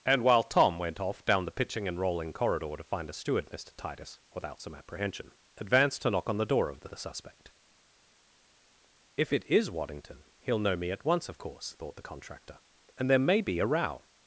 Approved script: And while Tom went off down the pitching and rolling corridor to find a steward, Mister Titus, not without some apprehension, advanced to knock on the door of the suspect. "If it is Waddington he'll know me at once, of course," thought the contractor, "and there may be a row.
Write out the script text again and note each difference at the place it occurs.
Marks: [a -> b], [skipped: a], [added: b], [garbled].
And while Tom went off down the pitching and rolling corridor to find a steward, Mister Titus, [skipped: not] without some apprehension, advanced to knock on the door of the [added: the] suspect. "If it is Waddington he'll know me at once, of course," thought the contractor, "and there may be a row.